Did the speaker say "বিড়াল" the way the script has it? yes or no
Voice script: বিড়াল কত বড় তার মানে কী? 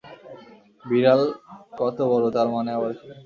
yes